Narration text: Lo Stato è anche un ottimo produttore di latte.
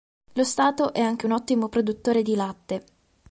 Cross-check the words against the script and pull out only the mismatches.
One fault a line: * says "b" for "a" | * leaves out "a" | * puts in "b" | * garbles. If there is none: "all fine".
all fine